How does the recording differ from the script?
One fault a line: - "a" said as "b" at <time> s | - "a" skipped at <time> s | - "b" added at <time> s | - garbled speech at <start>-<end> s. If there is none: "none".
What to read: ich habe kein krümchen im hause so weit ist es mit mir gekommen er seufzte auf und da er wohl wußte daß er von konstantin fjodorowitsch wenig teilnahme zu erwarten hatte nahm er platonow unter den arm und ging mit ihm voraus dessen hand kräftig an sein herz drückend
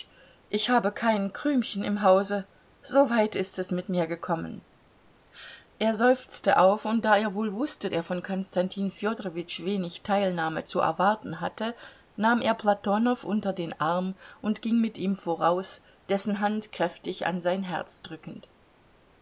- "daß" skipped at 7.9 s